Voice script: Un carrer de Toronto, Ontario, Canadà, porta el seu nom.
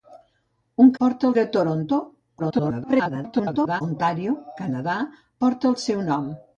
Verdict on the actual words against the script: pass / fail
fail